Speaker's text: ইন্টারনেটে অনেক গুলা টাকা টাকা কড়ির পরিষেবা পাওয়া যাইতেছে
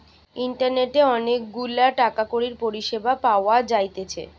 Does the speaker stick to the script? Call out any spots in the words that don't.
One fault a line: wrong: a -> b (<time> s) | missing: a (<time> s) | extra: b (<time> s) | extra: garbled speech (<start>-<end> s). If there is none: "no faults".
missing: টাকা (2.2 s)